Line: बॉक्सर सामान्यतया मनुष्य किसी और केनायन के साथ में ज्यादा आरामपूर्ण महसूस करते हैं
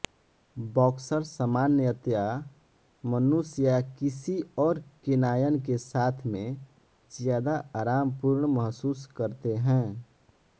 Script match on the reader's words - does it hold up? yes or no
no